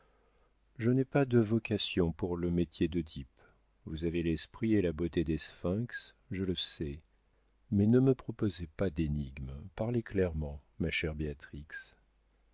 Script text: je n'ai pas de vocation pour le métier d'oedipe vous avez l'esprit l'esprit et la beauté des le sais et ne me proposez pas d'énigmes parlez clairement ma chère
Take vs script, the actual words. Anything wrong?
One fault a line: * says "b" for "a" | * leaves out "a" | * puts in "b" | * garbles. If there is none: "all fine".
* leaves out "l'esprit"
* puts in "sphinx je"
* says "mais" for "et"